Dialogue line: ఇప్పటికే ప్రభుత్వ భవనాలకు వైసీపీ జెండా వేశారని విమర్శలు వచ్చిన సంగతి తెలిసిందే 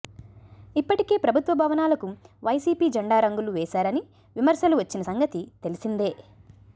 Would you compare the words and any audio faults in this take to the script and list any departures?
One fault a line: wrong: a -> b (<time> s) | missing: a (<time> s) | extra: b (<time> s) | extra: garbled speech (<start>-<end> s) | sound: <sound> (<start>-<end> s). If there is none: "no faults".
extra: రంగులు (3.2 s)